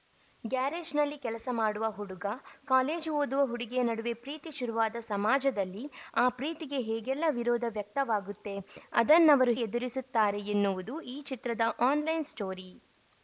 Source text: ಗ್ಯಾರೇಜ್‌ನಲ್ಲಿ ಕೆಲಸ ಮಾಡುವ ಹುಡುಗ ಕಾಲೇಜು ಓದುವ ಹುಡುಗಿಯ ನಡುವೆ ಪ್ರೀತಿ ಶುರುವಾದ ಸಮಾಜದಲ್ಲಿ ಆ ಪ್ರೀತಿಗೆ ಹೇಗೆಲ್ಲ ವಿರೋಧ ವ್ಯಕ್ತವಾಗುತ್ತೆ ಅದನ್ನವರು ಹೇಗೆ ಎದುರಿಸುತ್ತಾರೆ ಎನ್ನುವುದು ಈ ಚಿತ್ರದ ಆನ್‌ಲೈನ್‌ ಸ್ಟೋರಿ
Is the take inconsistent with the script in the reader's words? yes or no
yes